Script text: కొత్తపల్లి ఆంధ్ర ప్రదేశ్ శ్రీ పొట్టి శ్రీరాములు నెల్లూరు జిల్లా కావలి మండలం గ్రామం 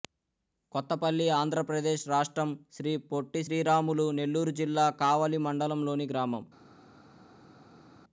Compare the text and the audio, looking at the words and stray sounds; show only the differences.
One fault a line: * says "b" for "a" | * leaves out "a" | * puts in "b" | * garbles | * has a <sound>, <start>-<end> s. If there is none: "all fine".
* puts in "రాష్ట్రం"
* puts in "లోని"